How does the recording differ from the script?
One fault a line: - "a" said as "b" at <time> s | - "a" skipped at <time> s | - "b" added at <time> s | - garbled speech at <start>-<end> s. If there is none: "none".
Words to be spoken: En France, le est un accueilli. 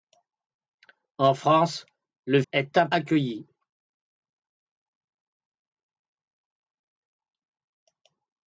none